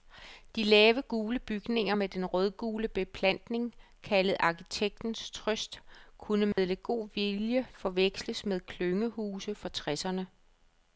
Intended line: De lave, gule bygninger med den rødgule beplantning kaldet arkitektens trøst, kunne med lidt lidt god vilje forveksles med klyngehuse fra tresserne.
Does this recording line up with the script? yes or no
no